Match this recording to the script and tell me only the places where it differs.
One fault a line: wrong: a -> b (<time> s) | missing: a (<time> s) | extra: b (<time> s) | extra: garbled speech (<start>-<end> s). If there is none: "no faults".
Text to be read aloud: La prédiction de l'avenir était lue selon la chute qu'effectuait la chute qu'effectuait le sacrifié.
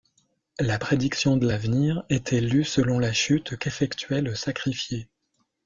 missing: la chute qu'effectuait (4.2 s)